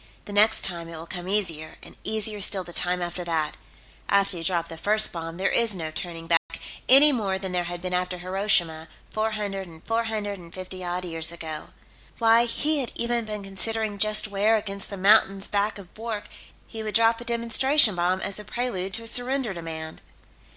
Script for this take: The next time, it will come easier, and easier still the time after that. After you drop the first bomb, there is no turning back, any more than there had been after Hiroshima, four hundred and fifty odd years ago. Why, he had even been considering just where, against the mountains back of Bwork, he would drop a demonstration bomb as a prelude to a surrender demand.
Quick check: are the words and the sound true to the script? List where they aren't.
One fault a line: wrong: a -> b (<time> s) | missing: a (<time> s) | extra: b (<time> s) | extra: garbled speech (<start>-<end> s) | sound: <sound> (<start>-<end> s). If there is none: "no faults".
sound: dropout (6.4-6.5 s)
extra: four hundred and (9.8 s)